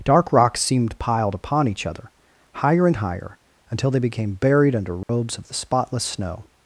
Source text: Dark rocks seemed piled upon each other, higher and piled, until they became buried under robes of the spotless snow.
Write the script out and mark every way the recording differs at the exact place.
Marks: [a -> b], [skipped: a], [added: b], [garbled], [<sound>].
Dark rocks seemed piled upon each other, higher and [piled, -> higher] until they became buried under robes [dropout] of the spotless snow.